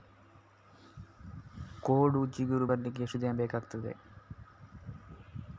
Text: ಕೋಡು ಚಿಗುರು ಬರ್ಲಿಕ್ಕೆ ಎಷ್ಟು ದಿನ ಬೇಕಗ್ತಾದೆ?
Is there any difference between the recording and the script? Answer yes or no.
no